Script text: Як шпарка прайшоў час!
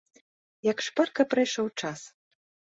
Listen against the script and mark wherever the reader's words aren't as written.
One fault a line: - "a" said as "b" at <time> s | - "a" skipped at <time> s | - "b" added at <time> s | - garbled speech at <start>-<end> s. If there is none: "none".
none